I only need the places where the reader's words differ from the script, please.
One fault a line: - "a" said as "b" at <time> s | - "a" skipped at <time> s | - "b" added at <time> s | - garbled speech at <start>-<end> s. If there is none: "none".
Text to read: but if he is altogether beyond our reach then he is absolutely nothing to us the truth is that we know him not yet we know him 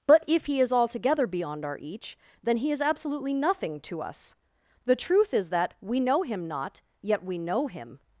- "reach" said as "each" at 1.8 s